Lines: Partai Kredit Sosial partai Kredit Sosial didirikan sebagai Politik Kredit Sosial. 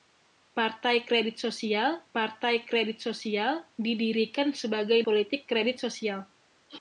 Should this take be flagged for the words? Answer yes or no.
no